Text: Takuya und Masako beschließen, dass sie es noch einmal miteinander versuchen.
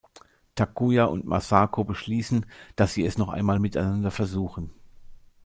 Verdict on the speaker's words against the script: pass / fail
pass